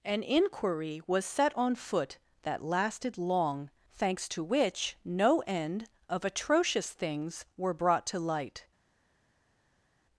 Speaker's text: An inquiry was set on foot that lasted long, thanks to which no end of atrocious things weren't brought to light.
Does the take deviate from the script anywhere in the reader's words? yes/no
yes